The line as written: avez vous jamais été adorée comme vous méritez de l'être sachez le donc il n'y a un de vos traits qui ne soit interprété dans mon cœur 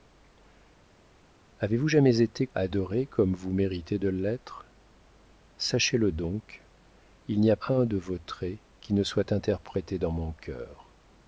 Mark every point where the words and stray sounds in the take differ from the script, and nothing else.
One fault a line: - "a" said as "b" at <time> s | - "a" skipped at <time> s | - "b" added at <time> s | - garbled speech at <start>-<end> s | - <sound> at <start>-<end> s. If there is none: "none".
none